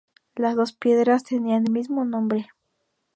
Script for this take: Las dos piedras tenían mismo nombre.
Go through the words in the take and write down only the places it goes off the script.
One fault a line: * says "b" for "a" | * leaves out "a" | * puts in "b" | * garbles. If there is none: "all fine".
all fine